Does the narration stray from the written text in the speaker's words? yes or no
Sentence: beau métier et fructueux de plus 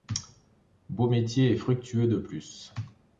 no